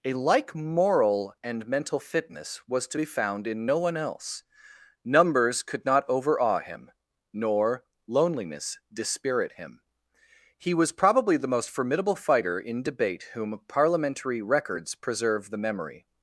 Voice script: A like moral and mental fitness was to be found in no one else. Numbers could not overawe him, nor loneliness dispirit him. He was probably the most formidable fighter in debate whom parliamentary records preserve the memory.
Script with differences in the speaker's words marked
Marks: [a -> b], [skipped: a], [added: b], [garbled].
A like moral and mental fitness was to be found in no one else. Numbers could not overawe him, nor loneliness dispirit him. He was probably the most formidable fighter in debate whom parliamentary records preserve the memory.